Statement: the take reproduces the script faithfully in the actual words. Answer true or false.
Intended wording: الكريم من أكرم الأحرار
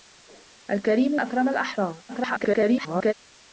false